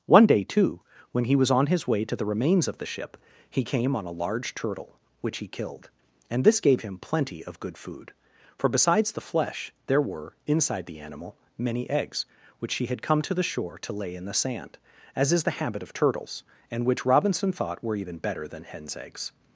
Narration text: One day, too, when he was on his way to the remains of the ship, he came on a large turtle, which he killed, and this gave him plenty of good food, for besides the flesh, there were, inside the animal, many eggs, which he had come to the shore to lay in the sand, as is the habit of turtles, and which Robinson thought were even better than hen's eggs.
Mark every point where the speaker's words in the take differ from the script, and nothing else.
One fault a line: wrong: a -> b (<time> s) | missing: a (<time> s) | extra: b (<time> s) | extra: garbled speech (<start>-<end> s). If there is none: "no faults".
no faults